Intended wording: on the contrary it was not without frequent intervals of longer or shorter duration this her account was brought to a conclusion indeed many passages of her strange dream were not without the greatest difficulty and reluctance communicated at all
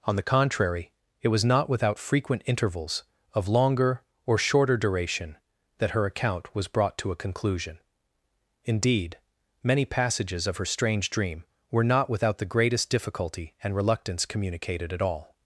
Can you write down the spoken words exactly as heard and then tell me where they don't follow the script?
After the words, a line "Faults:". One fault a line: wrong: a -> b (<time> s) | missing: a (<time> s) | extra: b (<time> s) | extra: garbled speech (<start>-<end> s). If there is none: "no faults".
on the contrary it was not without frequent intervals of longer or shorter duration that her account was brought to a conclusion indeed many passages of her strange dream were not without the greatest difficulty and reluctance communicated at all
Faults:
wrong: this -> that (5.8 s)